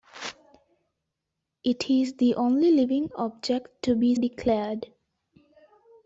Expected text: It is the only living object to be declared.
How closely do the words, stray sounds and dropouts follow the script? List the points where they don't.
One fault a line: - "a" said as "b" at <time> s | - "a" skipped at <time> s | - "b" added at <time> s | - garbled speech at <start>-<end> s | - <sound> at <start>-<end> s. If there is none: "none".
none